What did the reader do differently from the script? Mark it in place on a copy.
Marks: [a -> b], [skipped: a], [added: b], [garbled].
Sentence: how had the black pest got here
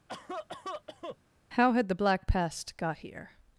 how had the black pest got here